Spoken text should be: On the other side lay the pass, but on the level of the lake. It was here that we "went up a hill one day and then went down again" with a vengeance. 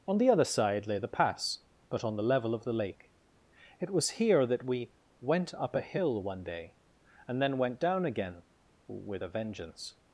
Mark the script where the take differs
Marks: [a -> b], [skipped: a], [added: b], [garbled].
On the other side lay the pass, but on the level of the lake. It was here that we "went up a hill one day and then went down again" with a vengeance.